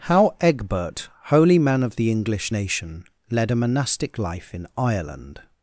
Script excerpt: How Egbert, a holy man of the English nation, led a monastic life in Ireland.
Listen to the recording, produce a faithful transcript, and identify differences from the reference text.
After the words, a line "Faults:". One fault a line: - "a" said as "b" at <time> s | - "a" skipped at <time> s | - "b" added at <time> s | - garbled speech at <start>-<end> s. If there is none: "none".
How Egbert, holy man of the English nation, led a monastic life in Ireland.
Faults:
- "a" skipped at 1.1 s